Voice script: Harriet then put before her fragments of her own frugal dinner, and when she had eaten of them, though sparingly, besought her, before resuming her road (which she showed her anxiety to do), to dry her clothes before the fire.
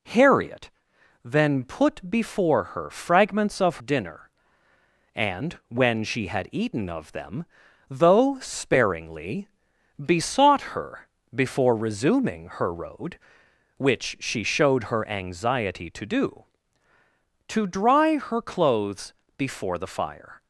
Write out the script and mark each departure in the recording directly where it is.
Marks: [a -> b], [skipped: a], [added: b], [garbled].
Harriet then put before her fragments of [skipped: her own frugal] dinner, and when she had eaten of them, though sparingly, besought her, before resuming her road (which she showed her anxiety to do), to dry her clothes before the fire.